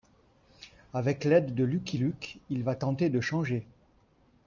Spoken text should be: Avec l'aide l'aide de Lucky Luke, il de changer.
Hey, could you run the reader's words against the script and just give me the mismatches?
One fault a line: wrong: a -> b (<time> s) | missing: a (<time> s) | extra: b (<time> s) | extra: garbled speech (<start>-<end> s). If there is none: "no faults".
missing: l'aide (1.5 s)
extra: va tenter (2.6 s)